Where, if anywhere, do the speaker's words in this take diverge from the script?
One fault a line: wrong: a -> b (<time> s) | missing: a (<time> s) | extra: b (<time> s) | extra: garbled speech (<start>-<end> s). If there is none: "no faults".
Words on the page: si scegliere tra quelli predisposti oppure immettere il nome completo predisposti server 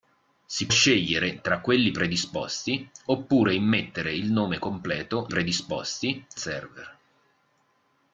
no faults